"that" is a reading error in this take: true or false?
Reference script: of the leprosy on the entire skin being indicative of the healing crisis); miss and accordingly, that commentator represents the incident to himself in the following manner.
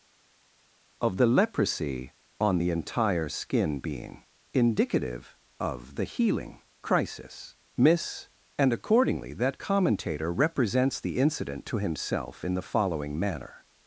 false